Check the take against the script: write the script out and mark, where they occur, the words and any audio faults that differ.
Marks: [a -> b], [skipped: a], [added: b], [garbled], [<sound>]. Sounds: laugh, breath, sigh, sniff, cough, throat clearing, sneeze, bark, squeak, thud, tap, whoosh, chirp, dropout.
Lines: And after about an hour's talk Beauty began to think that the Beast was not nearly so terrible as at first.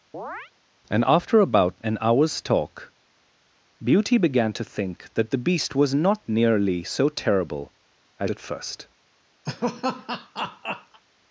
[chirp] And after about an hour's talk Beauty began to think that the Beast was not nearly so terrible as at first. [laugh]